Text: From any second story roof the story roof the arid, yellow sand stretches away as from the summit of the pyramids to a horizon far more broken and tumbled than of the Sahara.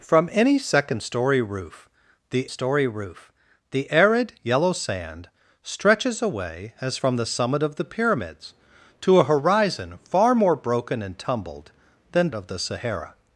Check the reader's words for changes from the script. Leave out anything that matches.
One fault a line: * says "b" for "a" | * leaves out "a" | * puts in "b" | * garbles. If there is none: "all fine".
all fine